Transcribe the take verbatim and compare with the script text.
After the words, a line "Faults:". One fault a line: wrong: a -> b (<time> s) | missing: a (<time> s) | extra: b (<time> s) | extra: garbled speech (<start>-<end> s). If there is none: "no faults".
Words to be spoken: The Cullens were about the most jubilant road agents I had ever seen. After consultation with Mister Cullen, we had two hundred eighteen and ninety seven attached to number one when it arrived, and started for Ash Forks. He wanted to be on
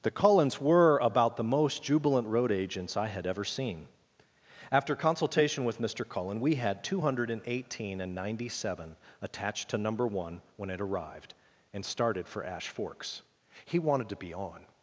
The Cullens were about the most jubilant road agents I had ever seen. After consultation with Mister Cullen, we had two hundred eighteen and ninety seven attached to number one when it arrived, and started for Ash Forks. He wanted to be on
Faults:
no faults